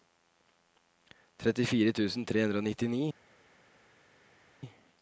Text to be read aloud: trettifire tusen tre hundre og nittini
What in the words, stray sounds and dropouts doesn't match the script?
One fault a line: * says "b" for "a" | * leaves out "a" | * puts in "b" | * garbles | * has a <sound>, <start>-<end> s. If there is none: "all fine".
all fine